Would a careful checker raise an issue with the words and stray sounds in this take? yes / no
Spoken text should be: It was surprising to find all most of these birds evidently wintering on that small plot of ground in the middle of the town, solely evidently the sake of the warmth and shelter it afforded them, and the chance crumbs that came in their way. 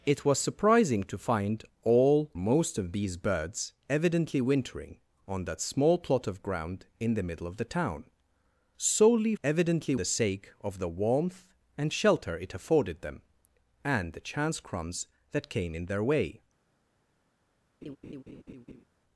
yes